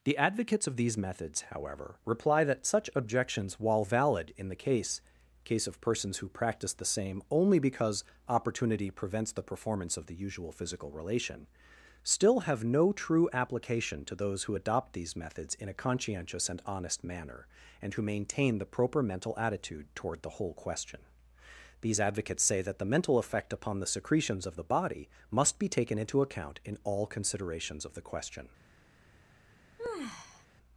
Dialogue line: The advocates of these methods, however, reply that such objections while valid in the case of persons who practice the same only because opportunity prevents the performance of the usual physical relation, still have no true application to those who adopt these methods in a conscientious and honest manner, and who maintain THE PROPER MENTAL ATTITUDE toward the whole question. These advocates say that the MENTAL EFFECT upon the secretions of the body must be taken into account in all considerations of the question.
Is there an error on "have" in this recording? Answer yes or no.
no